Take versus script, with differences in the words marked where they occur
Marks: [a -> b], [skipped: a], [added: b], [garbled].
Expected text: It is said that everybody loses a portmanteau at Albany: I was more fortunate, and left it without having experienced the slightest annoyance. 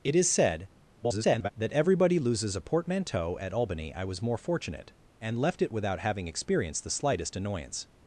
It is said [garbled] that everybody loses a portmanteau at Albany: I was more fortunate, and left it without having experienced the slightest annoyance.